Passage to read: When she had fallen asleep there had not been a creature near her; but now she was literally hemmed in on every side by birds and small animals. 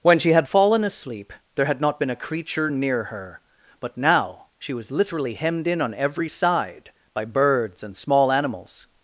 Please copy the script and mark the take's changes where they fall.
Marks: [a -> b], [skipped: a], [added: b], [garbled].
When she had fallen asleep there had not been a creature near her; but now she was literally hemmed in on every side by birds and small animals.